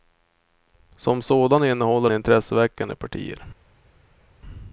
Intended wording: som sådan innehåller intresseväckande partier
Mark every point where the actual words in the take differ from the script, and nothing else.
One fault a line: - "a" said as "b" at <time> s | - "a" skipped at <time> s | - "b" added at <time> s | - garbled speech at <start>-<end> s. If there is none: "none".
none